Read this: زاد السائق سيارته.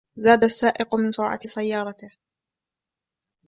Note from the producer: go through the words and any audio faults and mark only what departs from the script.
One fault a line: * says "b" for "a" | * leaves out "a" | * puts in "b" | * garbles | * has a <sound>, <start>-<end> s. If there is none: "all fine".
* puts in "من سرعة"